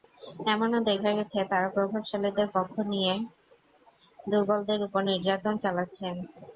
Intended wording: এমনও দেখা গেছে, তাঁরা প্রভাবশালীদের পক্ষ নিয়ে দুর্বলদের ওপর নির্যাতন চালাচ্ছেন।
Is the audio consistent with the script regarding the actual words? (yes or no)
yes